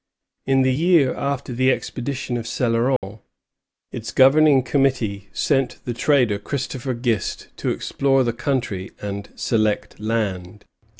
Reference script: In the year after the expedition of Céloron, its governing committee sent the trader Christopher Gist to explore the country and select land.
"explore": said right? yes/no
yes